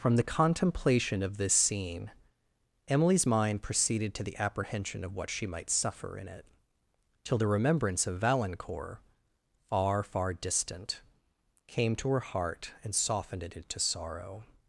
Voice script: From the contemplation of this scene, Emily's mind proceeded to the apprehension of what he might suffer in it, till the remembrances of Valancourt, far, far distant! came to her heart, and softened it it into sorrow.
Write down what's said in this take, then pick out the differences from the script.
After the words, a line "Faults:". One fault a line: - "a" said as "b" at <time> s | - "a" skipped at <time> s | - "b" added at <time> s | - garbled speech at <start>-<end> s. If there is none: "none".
From the contemplation of this scene, Emily's mind proceeded to the apprehension of what she might suffer in it, till the remembrance of Valancourt, far, far distant! came to her heart, and softened it into sorrow.
Faults:
- "he" said as "she" at 5.3 s
- "remembrances" said as "remembrance" at 7.5 s
- "it" skipped at 13.6 s